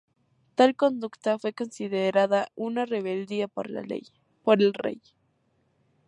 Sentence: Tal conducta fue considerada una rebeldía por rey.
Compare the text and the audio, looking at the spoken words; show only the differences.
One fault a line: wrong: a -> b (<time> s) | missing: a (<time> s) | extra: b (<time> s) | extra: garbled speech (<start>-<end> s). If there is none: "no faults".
extra: el (3.7 s)